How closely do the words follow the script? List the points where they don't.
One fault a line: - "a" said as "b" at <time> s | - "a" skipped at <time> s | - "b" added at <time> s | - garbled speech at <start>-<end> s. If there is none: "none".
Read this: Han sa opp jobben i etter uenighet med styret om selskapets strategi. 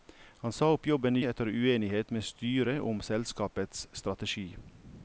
none